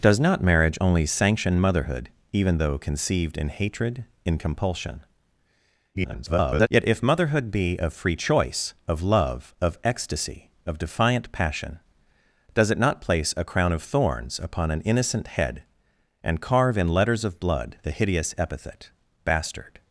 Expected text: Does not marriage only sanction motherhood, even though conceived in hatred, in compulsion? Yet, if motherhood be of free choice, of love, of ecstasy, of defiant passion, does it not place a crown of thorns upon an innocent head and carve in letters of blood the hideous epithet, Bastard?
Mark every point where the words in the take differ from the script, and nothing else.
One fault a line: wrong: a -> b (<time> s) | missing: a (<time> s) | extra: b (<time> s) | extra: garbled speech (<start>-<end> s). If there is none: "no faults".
extra: garbled speech (5.9-6.7 s)